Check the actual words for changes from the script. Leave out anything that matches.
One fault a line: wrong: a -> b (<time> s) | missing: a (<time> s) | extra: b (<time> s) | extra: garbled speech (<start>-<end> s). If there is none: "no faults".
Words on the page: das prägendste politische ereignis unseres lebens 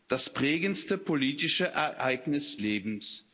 missing: unseres (2.6 s)